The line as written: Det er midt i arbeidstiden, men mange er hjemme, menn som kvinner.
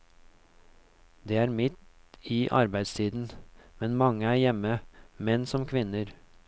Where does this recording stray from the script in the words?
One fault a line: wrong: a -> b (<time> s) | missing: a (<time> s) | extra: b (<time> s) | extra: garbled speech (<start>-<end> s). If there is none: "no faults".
no faults